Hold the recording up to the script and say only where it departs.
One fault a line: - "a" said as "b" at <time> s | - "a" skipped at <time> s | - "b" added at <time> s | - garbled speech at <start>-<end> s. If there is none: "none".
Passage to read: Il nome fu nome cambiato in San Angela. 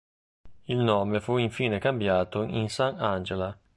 - "nome" said as "infine" at 1.4 s